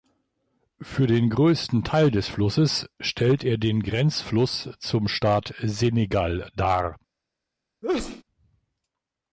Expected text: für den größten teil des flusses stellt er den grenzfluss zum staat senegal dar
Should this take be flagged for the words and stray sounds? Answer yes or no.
yes